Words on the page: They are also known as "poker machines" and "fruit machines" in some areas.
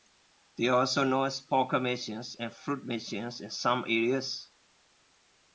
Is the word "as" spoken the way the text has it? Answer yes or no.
yes